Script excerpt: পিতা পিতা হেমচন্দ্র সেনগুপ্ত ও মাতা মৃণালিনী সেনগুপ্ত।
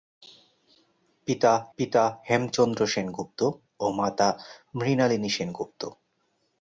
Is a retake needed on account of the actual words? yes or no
no